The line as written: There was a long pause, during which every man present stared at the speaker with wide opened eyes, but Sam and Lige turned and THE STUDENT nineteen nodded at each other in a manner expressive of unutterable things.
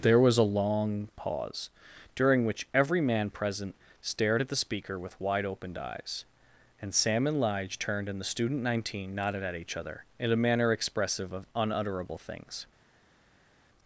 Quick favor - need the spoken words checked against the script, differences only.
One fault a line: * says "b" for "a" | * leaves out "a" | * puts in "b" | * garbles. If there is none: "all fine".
* says "and" for "but"